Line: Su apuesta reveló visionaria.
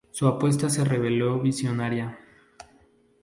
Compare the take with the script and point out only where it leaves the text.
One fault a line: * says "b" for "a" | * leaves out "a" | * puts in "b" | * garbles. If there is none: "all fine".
* puts in "se"